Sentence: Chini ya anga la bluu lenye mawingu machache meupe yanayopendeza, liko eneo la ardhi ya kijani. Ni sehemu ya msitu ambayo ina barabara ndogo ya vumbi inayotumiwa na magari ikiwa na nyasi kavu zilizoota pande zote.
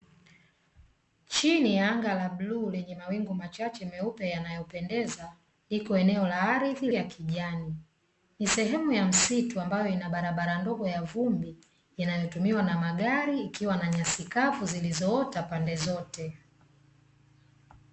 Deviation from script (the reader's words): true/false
false